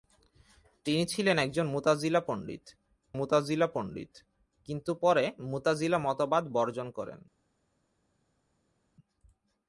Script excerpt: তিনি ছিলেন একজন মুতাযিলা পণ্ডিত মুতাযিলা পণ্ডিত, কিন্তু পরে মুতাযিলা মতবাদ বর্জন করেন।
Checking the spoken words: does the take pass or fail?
pass